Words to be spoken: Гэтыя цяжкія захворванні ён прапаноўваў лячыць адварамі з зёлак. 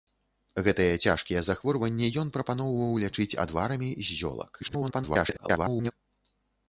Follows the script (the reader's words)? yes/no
no